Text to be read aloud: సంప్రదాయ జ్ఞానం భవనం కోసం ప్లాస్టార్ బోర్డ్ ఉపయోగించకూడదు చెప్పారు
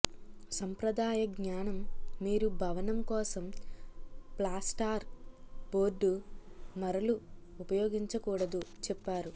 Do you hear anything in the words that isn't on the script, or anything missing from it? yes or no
yes